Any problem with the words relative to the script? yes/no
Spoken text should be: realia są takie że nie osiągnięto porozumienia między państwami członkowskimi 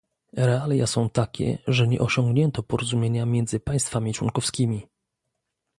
no